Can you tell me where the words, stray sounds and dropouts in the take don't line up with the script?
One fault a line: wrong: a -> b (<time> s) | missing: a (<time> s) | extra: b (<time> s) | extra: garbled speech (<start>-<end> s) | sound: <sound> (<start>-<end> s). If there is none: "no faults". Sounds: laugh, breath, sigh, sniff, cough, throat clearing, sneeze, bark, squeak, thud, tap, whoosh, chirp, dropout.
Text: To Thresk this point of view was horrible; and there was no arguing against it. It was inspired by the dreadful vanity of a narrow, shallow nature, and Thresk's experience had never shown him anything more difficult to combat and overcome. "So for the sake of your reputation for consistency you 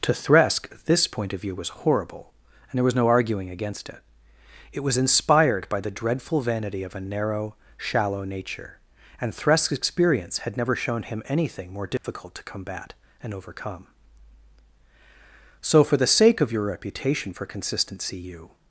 sound: dropout (12.0-12.0 s)